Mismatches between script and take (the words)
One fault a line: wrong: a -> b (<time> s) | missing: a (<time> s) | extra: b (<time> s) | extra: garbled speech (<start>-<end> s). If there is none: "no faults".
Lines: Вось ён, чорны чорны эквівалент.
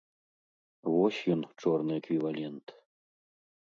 missing: чорны (1.9 s)